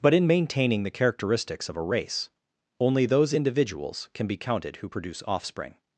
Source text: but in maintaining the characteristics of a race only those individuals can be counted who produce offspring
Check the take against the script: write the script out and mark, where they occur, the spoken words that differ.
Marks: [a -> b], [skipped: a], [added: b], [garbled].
but in maintaining the characteristics of a race only those individuals can be counted who produce offspring